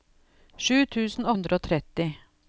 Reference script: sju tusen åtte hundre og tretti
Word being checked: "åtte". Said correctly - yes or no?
no